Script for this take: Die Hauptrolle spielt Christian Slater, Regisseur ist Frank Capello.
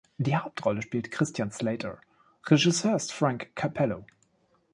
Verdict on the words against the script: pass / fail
pass